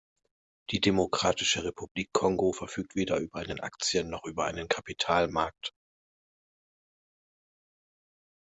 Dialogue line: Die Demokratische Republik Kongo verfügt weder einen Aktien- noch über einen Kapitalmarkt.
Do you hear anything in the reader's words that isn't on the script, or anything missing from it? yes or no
yes